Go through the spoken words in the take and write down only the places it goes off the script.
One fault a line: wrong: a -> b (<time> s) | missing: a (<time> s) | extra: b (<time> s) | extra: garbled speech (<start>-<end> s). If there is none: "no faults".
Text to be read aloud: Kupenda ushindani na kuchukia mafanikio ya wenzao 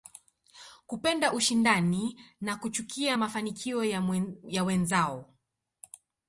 no faults